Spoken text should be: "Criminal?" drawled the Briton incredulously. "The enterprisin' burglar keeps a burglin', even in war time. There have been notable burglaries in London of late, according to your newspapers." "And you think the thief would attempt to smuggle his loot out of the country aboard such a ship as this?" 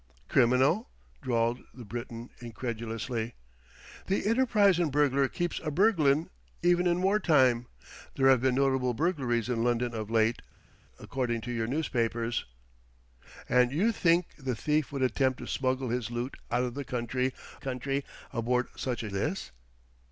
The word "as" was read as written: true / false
false